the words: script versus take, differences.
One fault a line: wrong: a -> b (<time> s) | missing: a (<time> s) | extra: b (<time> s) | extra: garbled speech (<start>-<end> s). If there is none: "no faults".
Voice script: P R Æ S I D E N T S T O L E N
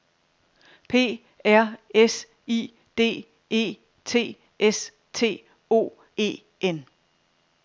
missing: Æ (1.8 s)
missing: N (3.8 s)
missing: L (5.9 s)